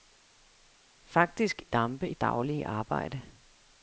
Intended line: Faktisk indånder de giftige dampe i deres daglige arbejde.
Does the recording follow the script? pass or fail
fail